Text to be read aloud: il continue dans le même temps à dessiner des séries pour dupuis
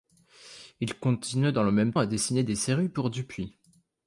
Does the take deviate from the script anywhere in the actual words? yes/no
yes